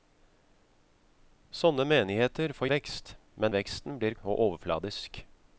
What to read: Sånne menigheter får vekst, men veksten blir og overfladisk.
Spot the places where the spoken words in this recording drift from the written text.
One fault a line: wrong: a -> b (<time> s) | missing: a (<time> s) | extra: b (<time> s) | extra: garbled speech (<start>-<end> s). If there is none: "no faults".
no faults